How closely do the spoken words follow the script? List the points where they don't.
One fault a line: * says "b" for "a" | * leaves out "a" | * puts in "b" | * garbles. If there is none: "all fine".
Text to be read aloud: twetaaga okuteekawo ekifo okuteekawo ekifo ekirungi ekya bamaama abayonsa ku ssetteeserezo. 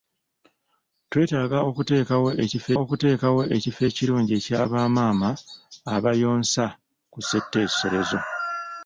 all fine